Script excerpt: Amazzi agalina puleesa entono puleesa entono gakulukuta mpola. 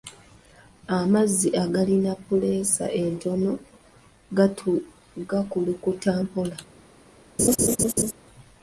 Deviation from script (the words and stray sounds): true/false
true